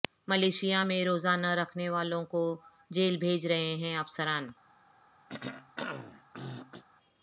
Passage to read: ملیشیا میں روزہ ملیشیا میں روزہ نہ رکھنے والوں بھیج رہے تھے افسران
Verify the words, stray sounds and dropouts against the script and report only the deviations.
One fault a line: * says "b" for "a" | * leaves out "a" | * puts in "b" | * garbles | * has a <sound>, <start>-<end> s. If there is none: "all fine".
* leaves out "ملیشیا میں روزہ"
* puts in "کو جیل"
* says "ہیں" for "تھے"
* has a throat clearing, 5.3-6.8 s